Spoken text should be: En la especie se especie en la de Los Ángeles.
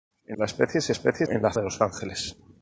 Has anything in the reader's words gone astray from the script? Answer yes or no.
no